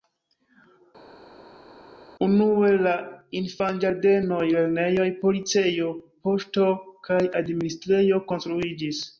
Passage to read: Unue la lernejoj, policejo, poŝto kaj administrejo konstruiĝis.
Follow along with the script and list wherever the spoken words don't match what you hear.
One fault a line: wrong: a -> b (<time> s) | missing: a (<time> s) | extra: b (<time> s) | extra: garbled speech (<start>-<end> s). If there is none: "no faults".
extra: infanĝardenoj (3.4 s)